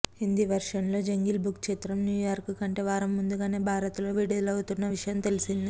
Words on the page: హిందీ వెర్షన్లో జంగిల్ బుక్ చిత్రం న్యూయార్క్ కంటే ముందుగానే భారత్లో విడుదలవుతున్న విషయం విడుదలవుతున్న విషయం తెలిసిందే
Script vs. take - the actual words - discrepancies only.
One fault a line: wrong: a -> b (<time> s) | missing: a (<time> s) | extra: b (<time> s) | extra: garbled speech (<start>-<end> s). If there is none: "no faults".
extra: వారం (2.9 s)
missing: విడుదలవుతున్న విషయం (5.2 s)